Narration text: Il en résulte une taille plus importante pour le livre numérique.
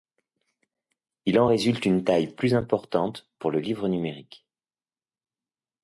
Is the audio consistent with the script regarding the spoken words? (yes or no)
yes